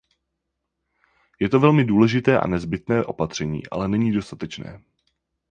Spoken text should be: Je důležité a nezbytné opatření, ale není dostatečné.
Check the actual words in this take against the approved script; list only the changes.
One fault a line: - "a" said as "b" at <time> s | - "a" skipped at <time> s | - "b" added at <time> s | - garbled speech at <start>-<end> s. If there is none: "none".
- "to velmi" added at 1.5 s